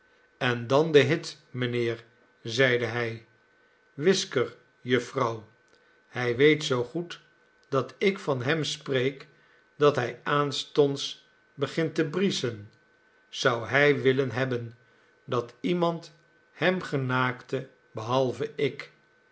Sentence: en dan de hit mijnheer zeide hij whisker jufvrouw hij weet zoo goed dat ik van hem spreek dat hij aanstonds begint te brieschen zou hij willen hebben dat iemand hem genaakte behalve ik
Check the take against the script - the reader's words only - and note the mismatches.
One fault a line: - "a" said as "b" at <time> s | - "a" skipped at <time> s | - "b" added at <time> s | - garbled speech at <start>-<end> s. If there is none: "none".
none